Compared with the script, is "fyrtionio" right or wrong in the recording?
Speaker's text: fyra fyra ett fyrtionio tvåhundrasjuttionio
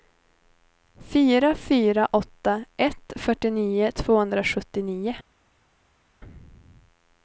right